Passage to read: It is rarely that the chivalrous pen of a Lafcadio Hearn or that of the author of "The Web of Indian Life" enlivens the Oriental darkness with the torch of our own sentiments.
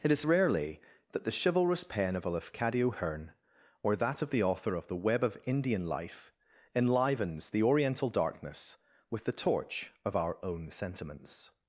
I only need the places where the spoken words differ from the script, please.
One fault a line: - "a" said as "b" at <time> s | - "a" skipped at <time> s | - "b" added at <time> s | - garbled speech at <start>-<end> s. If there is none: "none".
none